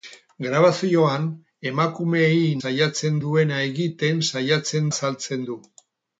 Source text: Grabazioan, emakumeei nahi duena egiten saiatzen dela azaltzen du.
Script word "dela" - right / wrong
wrong